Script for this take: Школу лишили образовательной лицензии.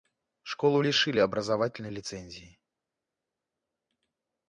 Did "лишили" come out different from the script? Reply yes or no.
no